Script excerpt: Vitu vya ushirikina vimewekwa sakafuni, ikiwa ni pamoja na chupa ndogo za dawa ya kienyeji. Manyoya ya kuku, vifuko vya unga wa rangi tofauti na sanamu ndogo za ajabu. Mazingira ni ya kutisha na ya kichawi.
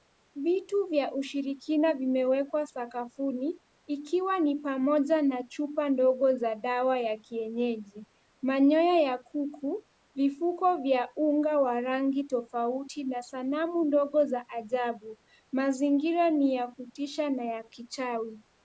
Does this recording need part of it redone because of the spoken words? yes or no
no